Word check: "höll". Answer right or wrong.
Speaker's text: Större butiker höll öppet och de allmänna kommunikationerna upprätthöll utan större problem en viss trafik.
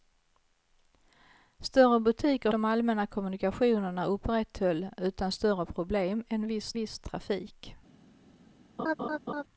wrong